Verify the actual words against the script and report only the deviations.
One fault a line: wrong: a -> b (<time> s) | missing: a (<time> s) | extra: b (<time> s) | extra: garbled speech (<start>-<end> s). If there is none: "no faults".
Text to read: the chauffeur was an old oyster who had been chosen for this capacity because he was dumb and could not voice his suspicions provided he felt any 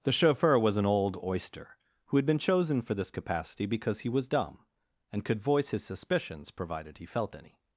missing: not (5.4 s)